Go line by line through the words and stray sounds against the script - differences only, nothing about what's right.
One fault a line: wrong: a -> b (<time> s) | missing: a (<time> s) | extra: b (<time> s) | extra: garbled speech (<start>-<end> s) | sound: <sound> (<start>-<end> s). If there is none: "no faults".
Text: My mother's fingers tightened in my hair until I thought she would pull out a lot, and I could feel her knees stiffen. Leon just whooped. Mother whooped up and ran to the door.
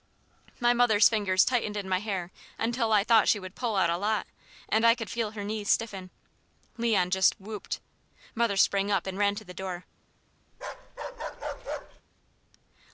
wrong: whooped -> sprang (8.6 s)
sound: bark (10.5-12.0 s)